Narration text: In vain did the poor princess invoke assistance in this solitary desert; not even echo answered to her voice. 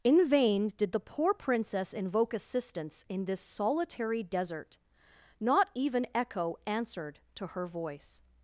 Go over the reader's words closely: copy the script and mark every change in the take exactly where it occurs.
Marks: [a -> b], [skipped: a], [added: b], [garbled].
In vain did the poor princess invoke assistance in this solitary desert; not even echo answered to her voice.